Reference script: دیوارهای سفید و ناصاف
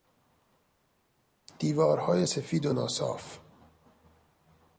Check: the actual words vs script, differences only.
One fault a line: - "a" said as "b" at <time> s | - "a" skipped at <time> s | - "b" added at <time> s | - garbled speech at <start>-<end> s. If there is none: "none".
none